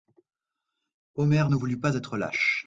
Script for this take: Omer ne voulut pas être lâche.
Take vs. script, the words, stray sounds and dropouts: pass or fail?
pass